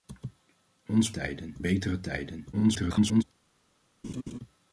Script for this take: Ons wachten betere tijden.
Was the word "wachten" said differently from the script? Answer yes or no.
yes